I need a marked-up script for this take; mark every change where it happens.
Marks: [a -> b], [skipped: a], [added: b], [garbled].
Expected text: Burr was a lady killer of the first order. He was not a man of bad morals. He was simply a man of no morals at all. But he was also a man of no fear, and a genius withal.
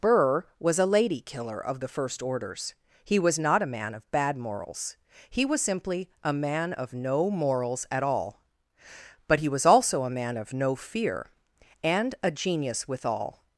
Burr was a lady killer of the first [order. -> orders] He was not a man of bad morals. He was simply a man of no morals at all. But he was also a man of no fear, and a genius withal.